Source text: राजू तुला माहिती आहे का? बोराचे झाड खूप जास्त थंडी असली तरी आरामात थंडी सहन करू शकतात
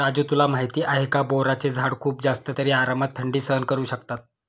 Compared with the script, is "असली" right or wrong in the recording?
wrong